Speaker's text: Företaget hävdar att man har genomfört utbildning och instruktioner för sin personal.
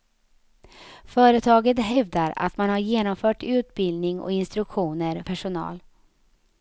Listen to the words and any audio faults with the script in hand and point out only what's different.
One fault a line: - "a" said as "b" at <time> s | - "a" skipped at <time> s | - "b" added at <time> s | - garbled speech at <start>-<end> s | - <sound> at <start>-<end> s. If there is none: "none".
- "för sin" skipped at 5.2 s